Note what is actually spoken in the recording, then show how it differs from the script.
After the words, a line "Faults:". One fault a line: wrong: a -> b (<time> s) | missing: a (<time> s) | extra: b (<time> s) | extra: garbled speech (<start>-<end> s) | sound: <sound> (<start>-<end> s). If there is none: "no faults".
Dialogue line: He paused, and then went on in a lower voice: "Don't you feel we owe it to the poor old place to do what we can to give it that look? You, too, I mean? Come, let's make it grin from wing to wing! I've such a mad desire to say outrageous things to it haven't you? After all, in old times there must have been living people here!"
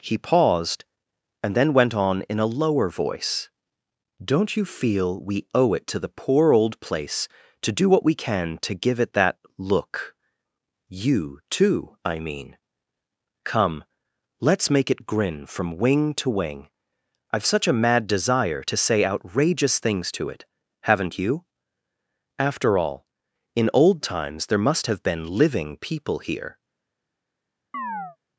He paused, and then went on in a lower voice: "Don't you feel we owe it to the poor old place to do what we can to give it that look? You, too, I mean? Come, let's make it grin from wing to wing! I've such a mad desire to say outrageous things to it haven't you? After all, in old times there must have been living people here!"
Faults:
sound: chirp (27.7-28.2 s)